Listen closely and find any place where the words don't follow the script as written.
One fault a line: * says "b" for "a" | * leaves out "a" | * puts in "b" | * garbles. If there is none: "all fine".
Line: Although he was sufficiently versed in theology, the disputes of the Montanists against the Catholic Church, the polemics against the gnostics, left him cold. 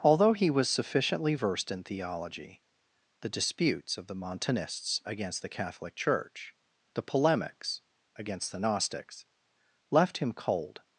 all fine